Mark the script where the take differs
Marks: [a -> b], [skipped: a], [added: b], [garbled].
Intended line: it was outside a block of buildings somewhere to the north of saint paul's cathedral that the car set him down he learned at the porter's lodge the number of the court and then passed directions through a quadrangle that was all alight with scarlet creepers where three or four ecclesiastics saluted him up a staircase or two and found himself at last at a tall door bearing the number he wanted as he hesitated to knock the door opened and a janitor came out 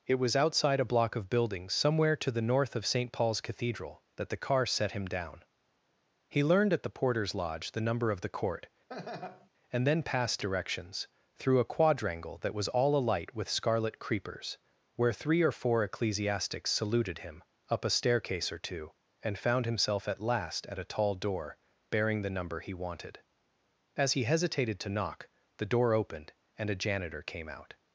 it was outside a block of buildings somewhere to the north of saint paul's cathedral that the car set him down he learned at the porter's lodge the number of the court and then passed directions through a quadrangle that was all alight with scarlet creepers where three or four ecclesiastics saluted him up a staircase or two and found himself at last at a tall door bearing the number he wanted as he hesitated to knock the door opened and a janitor came out